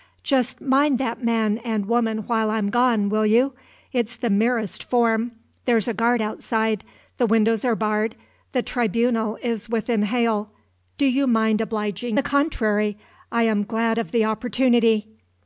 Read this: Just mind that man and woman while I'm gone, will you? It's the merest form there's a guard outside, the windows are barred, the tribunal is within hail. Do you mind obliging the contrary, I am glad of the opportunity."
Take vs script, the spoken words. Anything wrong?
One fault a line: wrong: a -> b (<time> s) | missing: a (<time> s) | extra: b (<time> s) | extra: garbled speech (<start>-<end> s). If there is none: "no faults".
no faults